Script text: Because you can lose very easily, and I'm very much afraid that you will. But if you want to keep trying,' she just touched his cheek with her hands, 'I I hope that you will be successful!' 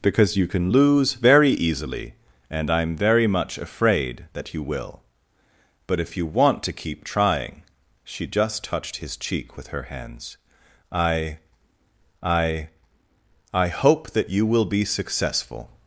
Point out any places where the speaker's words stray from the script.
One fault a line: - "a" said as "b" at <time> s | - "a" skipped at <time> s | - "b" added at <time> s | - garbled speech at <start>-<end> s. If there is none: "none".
- "I" added at 13.5 s